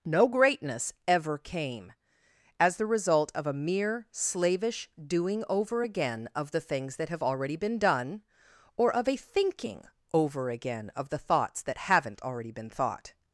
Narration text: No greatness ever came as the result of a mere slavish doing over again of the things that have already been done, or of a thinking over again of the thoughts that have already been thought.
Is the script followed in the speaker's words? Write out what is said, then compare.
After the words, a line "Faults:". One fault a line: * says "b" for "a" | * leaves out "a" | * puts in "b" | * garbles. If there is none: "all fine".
No greatness ever came as the result of a mere slavish doing over again of the things that have already been done, or of a thinking over again of the thoughts that haven't already been thought.
Faults:
* says "haven't" for "have"